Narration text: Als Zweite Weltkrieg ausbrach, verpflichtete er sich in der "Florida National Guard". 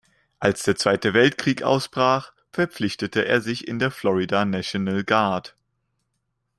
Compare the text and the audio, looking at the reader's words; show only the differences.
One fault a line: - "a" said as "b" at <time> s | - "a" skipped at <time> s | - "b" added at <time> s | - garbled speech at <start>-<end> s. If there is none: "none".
- "der" added at 0.6 s